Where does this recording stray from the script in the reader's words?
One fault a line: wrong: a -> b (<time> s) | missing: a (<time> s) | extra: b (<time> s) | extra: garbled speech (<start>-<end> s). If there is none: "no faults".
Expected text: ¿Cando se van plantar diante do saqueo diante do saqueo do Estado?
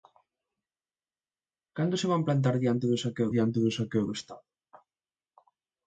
no faults